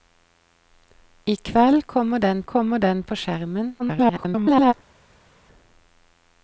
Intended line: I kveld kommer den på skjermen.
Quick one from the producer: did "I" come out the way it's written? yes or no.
yes